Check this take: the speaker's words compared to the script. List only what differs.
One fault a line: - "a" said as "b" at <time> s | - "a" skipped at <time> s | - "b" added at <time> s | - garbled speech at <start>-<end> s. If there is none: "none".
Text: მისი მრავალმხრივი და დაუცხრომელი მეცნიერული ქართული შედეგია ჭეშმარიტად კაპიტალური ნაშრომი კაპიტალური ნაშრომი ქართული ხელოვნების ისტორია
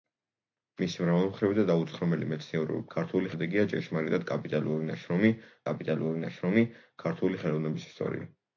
none